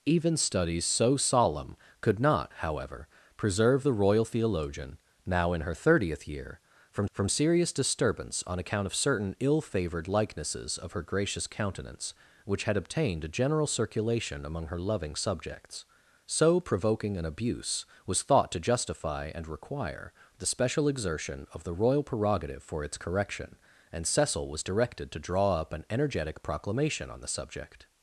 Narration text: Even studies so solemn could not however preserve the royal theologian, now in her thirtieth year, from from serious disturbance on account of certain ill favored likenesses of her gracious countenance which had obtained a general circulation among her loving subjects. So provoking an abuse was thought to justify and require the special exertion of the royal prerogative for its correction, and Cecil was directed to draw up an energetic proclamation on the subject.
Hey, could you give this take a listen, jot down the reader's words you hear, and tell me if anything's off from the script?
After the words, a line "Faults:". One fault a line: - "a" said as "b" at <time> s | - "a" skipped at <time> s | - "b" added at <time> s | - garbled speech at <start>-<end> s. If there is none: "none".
Even studies so solemn could not however preserve the royal theologian, now in her thirtieth year, from from serious disturbance on account of certain ill favored likenesses of her gracious countenance which had obtained a general circulation among her loving subjects. So provoking an abuse was thought to justify and require the special exertion of the royal prerogative for its correction, and Cecil was directed to draw up an energetic proclamation on the subject.
Faults:
none